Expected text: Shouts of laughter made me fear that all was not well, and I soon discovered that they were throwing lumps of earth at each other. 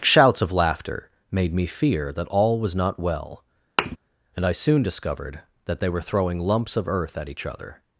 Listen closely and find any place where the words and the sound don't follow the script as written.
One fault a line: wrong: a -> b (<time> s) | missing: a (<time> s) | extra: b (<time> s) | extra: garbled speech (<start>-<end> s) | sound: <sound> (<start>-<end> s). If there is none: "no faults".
sound: thud (3.8-4.0 s)